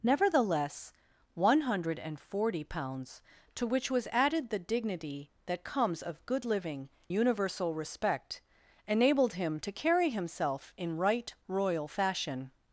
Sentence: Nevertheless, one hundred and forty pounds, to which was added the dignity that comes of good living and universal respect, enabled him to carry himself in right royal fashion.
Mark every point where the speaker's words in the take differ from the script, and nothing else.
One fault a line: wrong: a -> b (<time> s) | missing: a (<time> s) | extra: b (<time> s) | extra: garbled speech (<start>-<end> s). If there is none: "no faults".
missing: and (6.9 s)